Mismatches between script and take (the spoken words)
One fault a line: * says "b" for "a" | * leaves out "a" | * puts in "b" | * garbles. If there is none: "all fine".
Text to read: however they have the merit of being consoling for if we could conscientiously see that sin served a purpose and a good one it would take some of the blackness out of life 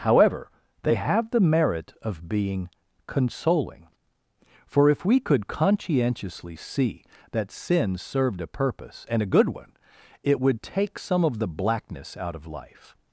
all fine